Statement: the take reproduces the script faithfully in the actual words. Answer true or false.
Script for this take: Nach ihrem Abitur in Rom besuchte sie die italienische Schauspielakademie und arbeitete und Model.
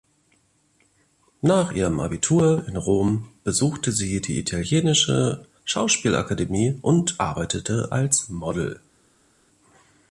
false